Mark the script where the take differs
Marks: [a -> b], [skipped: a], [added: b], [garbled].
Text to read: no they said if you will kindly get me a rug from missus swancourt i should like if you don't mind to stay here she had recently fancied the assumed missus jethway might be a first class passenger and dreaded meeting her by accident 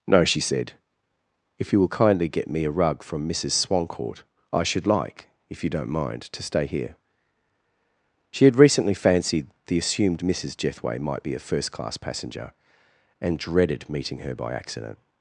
no [they -> she] said if you will kindly get me a rug from missus swancourt i should like if you don't mind to stay here she had recently fancied the assumed missus jethway might be a first class passenger and dreaded meeting her by accident